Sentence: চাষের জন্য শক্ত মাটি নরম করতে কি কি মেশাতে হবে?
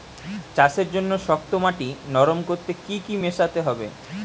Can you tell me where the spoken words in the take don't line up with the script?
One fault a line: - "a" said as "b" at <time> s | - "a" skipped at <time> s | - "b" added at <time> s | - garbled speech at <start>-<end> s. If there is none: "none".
none